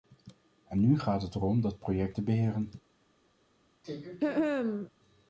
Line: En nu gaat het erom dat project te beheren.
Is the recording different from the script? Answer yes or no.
no